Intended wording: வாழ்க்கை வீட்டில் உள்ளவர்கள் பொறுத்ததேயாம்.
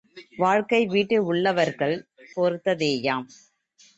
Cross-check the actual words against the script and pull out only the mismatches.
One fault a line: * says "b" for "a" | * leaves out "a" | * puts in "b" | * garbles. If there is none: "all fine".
all fine